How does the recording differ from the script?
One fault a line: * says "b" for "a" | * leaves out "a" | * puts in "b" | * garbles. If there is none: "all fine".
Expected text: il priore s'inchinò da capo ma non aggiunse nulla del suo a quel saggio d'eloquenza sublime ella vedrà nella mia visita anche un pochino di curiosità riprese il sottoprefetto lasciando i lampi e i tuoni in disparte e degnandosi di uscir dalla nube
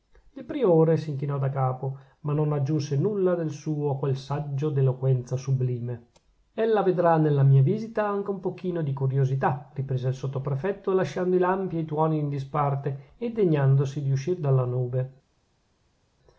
all fine